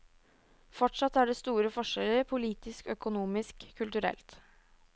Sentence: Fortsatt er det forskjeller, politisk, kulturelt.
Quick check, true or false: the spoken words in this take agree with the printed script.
false